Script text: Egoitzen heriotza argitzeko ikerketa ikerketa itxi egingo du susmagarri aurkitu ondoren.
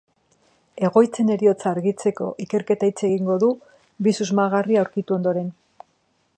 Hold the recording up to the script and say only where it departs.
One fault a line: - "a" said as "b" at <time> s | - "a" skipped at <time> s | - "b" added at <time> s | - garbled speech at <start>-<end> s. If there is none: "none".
- "ikerketa" skipped at 2.9 s
- "bi" added at 4.1 s